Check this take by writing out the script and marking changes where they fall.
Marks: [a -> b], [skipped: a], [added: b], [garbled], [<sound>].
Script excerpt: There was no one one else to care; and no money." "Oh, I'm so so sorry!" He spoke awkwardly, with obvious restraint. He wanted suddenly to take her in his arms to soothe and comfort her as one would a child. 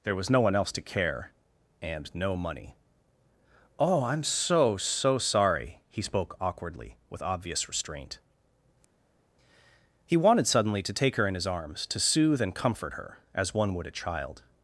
There was no one [skipped: one] else to care; and no money." "Oh, I'm so so sorry!" He spoke awkwardly, with obvious restraint. He wanted suddenly to take her in his arms to soothe and comfort her as one would a child.